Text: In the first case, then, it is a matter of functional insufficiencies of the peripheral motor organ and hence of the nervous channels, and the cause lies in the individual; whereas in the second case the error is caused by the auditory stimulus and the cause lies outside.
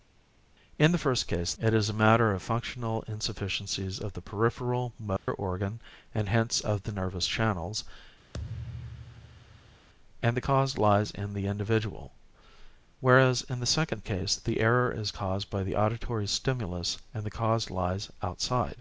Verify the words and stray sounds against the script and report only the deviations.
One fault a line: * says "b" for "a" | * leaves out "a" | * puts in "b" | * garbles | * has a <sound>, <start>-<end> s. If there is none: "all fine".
* leaves out "then"
* has a dropout, 5.2-5.3 s
* has a thud, 8.3-9.9 s